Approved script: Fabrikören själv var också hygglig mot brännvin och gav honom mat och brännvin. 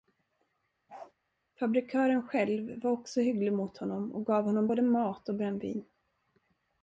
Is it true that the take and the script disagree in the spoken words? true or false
true